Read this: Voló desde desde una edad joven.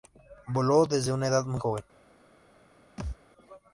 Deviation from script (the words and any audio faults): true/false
true